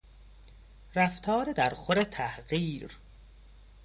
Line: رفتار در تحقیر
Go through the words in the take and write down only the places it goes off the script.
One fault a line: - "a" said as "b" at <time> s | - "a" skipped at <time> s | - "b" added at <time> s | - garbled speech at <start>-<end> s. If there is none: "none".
- "خور" added at 1.7 s